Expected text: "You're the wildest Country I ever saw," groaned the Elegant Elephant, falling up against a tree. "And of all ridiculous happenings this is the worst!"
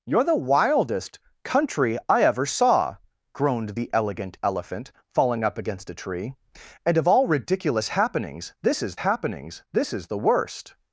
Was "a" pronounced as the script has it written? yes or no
yes